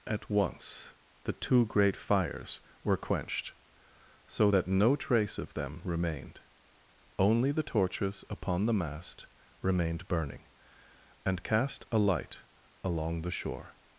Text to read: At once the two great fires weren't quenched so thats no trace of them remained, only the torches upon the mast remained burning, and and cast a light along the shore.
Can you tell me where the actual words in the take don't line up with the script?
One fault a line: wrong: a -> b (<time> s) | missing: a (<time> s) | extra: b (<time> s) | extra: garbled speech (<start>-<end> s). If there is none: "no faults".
wrong: weren't -> were (2.8 s)
wrong: thats -> that (4.5 s)
missing: and (11.4 s)